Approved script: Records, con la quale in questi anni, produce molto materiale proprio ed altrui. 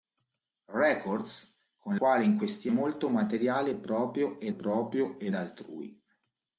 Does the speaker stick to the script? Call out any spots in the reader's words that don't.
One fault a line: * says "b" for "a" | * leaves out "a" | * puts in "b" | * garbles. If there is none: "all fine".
* leaves out "la"
* says "molto materiale proprio ed" for "anni produce molto materiale"